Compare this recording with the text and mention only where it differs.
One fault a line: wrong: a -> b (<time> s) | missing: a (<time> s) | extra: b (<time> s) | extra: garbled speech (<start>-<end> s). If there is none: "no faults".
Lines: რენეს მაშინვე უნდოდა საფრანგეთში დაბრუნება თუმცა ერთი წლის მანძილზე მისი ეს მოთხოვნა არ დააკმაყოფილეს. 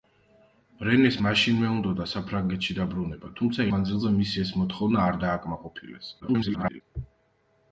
missing: ერთი წლის (3.7 s)
extra: garbled speech (6.2-6.8 s)